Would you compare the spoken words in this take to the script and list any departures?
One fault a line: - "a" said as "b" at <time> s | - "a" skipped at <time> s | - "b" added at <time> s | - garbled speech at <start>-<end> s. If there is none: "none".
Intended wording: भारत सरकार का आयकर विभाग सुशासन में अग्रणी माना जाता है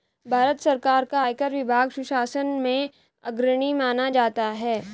none